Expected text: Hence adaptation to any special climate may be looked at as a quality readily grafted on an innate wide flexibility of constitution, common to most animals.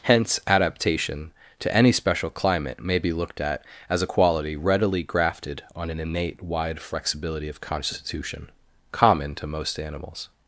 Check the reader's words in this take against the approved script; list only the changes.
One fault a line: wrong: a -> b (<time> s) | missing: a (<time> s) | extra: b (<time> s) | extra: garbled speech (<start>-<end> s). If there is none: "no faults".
no faults